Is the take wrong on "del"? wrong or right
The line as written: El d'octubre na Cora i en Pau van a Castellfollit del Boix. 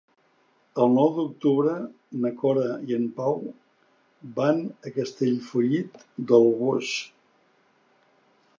right